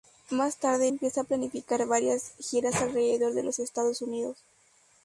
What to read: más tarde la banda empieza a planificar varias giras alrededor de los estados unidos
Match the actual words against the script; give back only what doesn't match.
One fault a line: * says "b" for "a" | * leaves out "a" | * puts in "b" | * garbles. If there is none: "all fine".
* leaves out "la banda"